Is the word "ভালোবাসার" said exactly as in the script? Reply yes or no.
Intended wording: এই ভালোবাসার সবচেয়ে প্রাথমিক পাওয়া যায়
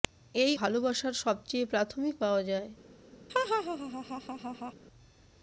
yes